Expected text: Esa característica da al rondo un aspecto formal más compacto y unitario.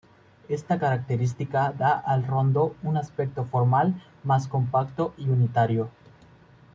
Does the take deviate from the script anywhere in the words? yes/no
yes